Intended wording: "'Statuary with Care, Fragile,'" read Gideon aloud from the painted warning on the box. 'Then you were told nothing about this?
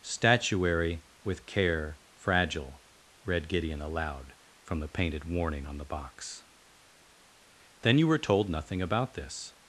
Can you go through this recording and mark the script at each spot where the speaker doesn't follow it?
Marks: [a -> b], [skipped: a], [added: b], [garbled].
"'Statuary with Care, Fragile,'" read Gideon aloud from the painted warning on the box. 'Then you were told nothing about this?